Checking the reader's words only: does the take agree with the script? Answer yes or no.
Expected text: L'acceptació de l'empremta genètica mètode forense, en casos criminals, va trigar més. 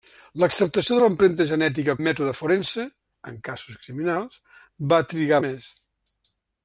yes